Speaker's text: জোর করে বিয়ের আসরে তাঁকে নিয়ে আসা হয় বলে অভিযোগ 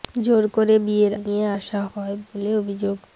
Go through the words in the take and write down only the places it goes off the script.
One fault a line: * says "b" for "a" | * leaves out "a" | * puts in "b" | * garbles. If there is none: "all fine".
* leaves out "আসরে তাঁকে"